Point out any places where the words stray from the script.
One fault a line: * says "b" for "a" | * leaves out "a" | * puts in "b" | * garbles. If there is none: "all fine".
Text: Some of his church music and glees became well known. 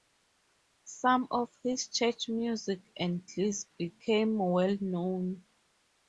all fine